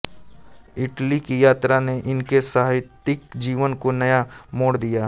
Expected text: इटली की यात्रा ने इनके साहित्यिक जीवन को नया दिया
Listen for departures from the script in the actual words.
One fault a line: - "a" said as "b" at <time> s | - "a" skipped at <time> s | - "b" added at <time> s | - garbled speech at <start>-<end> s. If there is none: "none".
- "मोड़" added at 4.5 s